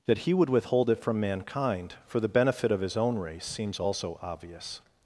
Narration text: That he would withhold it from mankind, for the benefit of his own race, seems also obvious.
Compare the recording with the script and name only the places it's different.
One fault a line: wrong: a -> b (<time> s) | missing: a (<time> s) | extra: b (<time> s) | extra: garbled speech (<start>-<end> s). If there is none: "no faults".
no faults